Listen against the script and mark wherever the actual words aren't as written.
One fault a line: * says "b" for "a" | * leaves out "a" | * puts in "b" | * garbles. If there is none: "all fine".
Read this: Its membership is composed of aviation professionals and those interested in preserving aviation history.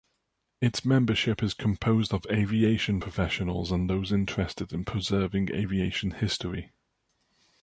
all fine